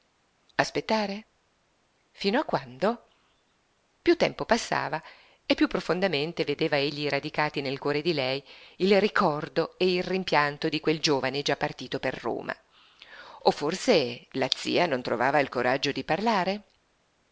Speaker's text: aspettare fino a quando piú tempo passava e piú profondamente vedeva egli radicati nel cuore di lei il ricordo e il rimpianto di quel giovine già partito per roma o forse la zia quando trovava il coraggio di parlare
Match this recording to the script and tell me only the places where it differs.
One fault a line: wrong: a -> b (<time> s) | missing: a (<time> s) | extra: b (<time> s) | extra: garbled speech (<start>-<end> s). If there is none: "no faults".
wrong: quando -> non (14.9 s)